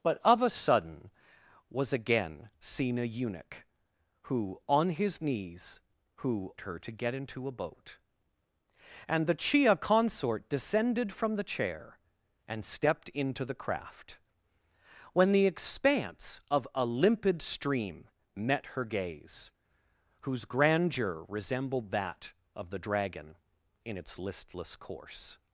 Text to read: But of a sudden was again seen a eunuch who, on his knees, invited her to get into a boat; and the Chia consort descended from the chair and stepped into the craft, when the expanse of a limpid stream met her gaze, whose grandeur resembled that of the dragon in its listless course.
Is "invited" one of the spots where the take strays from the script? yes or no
yes